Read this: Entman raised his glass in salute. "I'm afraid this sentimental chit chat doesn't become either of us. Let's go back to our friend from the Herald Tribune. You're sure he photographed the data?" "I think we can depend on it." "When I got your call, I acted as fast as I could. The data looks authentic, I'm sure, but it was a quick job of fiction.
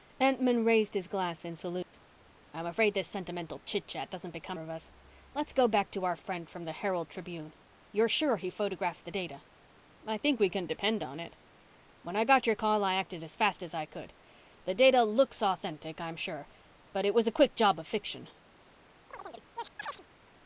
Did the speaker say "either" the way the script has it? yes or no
no